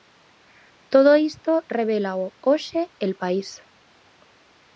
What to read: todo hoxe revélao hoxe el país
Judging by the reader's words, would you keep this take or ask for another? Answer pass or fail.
fail